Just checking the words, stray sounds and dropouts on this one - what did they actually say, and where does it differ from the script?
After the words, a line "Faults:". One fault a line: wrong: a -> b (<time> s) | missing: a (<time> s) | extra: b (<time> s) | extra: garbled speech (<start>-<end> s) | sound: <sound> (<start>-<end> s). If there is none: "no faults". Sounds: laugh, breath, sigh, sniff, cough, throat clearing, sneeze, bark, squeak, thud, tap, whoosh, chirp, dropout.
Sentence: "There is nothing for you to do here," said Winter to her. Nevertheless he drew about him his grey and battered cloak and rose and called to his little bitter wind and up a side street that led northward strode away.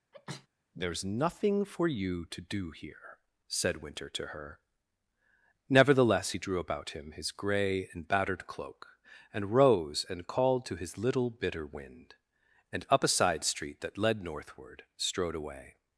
"There is nothing for you to do here," said Winter to her. Nevertheless he drew about him his grey and battered cloak and rose and called to his little bitter wind and up a side street that led northward strode away.
Faults:
sound: sneeze (0.1-0.5 s)